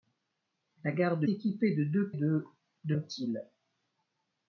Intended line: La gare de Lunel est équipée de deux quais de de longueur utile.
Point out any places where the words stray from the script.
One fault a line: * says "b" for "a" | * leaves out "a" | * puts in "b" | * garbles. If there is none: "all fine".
* leaves out "Lunel est"
* leaves out "quais"
* leaves out "longueur"